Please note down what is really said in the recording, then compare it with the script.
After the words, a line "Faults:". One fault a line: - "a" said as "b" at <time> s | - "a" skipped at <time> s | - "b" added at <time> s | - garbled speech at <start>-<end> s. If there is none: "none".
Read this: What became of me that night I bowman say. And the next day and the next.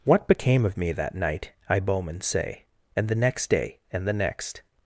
What became of me that night I bowman say. And the next day and the next.
Faults:
none